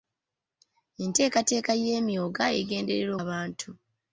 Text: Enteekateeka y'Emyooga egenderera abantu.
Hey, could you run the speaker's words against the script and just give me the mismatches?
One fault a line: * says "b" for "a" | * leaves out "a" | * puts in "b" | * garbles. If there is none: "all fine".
all fine